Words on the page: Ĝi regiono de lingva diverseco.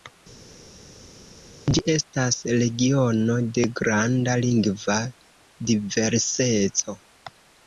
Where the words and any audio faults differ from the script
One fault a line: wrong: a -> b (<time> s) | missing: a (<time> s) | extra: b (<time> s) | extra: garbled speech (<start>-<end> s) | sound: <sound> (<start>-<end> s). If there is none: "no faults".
extra: estas (1.9 s)
extra: granda (3.8 s)